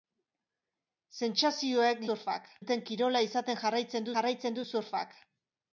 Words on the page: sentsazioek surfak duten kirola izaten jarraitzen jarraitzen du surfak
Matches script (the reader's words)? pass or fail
pass